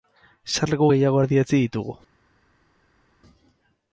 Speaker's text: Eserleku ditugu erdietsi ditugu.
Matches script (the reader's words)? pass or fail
fail